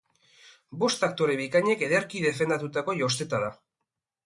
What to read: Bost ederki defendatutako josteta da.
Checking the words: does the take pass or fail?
fail